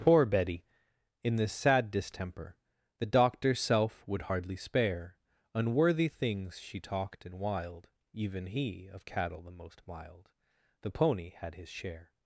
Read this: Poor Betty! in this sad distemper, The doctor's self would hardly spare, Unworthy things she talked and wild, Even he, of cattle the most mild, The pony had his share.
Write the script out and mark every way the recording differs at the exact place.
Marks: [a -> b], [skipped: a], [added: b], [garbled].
Poor Betty! in this sad distemper, The doctor's self would hardly spare, Unworthy things she talked and wild, Even he, of cattle the most mild, The pony had his share.